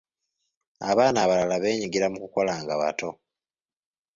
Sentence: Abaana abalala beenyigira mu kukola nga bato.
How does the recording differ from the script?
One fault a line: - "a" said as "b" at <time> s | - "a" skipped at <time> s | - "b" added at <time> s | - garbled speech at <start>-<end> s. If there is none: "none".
none